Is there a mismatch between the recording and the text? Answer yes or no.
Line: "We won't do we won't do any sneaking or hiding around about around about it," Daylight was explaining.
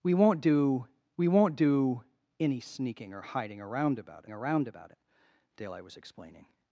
no